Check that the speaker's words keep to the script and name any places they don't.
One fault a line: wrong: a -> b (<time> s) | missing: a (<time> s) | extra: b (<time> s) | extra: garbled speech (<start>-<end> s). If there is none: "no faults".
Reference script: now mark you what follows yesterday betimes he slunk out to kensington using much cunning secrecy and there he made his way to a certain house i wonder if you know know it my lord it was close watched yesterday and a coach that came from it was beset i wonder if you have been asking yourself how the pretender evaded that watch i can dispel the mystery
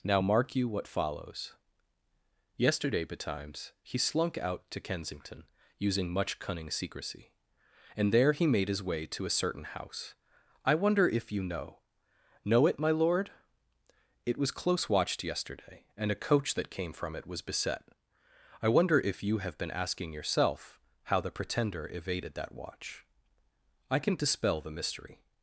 no faults